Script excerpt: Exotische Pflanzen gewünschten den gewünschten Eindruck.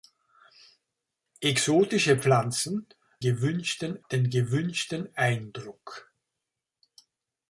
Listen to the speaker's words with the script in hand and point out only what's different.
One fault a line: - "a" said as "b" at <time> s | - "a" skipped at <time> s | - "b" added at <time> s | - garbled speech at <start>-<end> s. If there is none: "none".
none